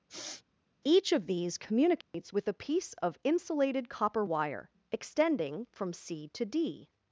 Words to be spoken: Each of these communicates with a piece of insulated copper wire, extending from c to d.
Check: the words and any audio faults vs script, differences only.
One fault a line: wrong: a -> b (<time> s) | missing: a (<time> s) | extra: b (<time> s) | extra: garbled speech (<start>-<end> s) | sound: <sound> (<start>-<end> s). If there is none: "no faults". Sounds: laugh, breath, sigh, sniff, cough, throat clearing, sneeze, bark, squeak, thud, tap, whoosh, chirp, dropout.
sound: sniff (0.1-0.4 s)
sound: dropout (2.0-2.1 s)